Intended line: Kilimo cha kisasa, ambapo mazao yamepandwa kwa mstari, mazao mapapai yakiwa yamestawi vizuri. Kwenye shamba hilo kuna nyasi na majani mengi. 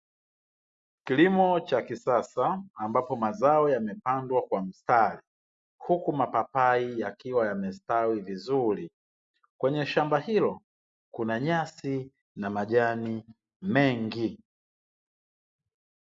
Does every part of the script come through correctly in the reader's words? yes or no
no